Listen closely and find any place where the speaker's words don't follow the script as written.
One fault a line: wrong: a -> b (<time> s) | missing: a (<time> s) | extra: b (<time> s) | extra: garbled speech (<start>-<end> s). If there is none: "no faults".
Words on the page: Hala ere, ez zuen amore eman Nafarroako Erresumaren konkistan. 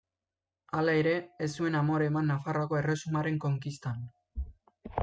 no faults